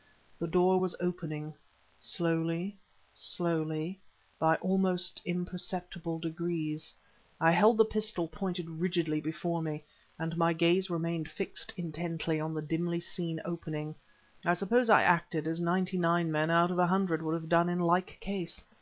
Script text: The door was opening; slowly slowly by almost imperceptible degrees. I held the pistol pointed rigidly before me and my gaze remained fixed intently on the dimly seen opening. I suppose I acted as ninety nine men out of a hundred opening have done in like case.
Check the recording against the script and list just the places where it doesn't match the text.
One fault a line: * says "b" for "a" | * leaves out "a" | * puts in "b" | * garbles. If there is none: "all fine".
* says "would" for "opening"